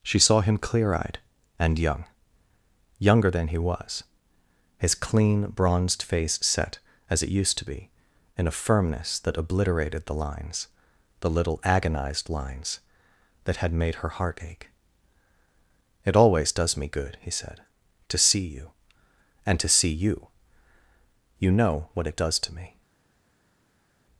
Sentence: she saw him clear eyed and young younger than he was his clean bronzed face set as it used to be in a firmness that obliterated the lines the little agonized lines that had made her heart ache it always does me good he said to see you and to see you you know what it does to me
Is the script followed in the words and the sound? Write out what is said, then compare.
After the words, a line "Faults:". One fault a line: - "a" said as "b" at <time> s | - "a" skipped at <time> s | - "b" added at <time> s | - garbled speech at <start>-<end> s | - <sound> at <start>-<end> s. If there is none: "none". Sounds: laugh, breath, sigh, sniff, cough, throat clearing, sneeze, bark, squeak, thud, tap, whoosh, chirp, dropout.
she saw him clear eyed and young younger than he was his clean bronzed face set as it used to be in a firmness that obliterated the lines the little agonized lines that had made her heart ache it always does me good he said to see you and to see you you know what it does to me
Faults:
none